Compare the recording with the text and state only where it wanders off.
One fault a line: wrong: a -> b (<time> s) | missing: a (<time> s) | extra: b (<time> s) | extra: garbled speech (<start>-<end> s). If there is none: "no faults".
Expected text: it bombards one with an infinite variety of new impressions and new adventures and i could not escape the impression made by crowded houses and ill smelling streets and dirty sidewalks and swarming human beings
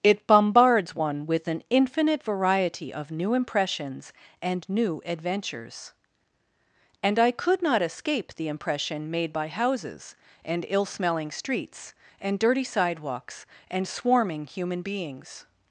missing: crowded (9.5 s)